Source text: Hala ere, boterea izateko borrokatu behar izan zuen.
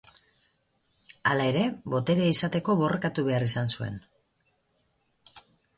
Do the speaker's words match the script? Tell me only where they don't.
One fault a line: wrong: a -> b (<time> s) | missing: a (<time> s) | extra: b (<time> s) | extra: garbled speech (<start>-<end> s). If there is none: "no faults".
no faults